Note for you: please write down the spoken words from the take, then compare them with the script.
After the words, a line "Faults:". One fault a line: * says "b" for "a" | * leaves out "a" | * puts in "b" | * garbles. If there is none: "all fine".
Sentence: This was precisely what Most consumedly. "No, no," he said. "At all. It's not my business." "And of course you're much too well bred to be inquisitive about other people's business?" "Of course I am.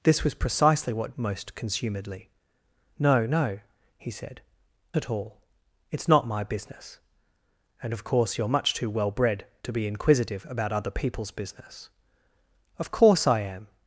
This was precisely what Most consumedly. "No, no," he said. "At all. It's not my business." "And of course you're much too well bred to be inquisitive about other people's business?" "Of course I am.
Faults:
all fine